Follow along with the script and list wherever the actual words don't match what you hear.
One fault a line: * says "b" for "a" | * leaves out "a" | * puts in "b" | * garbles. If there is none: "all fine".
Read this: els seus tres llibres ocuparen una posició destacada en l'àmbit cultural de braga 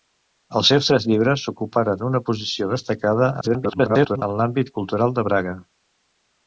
* garbles